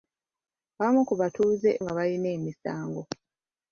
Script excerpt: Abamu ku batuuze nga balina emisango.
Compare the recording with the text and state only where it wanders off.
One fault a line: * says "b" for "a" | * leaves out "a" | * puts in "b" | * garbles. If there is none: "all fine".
all fine